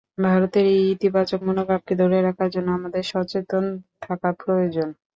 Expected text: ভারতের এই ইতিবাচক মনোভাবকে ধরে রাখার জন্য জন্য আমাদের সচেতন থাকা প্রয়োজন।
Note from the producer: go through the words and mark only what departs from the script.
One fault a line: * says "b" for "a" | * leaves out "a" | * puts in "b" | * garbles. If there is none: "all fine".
* leaves out "জন্য"